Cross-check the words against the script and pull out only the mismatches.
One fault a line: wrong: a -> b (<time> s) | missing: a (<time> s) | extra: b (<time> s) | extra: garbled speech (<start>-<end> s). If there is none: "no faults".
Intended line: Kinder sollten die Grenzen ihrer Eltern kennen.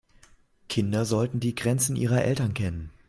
no faults